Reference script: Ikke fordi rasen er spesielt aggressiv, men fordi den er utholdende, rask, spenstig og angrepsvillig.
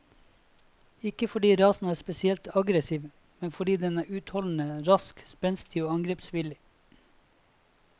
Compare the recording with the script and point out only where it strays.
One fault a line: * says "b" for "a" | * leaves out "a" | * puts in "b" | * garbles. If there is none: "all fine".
all fine